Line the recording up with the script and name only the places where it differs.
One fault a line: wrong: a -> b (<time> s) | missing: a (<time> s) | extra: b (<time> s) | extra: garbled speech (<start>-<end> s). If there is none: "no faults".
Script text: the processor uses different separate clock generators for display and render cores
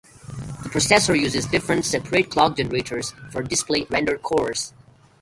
missing: and (3.9 s)